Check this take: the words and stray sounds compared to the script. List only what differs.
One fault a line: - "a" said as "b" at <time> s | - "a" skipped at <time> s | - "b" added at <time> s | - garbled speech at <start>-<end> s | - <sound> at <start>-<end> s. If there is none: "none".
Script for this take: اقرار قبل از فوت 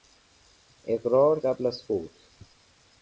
none